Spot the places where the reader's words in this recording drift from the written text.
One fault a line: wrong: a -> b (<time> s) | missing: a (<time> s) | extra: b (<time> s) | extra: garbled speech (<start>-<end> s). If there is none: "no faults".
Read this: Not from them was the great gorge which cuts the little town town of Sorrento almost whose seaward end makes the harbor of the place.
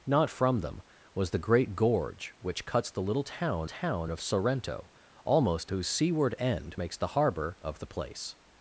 no faults